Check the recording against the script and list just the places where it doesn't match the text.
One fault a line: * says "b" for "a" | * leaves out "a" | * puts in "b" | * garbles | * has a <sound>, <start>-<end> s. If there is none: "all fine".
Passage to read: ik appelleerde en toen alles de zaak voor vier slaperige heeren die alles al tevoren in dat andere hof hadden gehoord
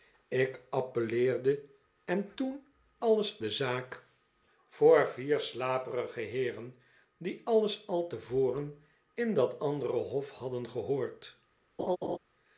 * has a laugh, 11.8-12.2 s